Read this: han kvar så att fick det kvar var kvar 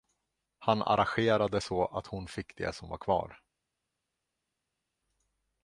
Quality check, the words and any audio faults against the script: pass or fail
fail